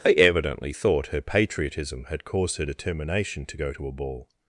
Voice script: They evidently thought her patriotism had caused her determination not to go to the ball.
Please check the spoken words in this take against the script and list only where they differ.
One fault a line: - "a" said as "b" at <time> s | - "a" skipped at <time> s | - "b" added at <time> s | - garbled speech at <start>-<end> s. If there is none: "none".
- "not" skipped at 3.4 s
- "the" said as "a" at 3.9 s